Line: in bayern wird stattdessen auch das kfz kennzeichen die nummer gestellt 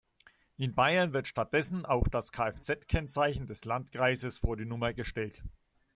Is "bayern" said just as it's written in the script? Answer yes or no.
yes